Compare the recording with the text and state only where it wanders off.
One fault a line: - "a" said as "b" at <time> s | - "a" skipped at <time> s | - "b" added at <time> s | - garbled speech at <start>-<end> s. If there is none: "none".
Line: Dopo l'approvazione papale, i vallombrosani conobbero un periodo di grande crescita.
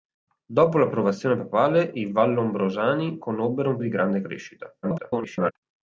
- "periodo" skipped at 3.8 s
- garbled speech at 4.8-5.5 s